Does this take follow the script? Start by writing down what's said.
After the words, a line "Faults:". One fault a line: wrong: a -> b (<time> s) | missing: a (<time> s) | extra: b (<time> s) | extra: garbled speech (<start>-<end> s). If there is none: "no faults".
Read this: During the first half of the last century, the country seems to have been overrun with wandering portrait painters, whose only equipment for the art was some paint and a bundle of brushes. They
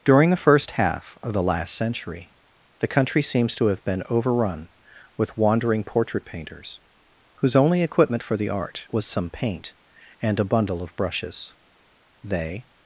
During the first half of the last century, the country seems to have been overrun with wandering portrait painters, whose only equipment for the art was some paint and a bundle of brushes. They
Faults:
no faults